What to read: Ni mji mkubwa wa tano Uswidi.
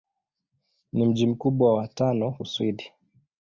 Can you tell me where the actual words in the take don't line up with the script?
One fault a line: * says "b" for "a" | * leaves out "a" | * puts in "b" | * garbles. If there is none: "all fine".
all fine